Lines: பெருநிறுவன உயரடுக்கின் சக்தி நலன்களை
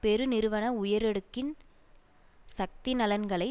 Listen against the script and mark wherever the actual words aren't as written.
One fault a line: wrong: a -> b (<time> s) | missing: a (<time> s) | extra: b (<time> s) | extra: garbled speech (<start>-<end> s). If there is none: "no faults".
no faults